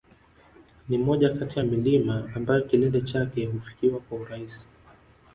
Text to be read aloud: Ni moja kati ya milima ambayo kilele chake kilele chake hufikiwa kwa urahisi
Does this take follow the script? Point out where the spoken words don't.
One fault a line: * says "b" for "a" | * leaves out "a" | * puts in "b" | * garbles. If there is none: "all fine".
* leaves out "kilele chake"